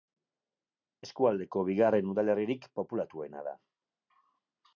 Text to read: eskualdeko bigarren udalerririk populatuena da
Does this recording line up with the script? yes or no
yes